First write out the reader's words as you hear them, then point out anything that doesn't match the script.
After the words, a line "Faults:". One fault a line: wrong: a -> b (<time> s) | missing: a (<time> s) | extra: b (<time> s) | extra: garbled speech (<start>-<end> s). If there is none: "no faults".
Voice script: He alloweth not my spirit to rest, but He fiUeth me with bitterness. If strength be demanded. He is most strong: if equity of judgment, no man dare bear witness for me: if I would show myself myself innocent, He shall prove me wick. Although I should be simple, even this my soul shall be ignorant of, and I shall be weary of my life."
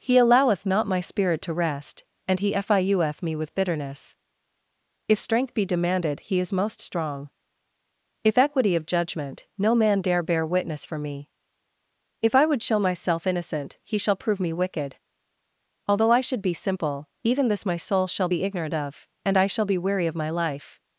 He alloweth not my spirit to rest, and He fiUeth me with bitterness. If strength be demanded. He is most strong: if equity of judgment, no man dare bear witness for me: if I would show myself innocent, He shall prove me wicked. Although I should be simple, even this my soul shall be ignorant of, and I shall be weary of my life."
Faults:
wrong: but -> and (2.3 s)
missing: myself (13.3 s)
wrong: wick -> wicked (14.5 s)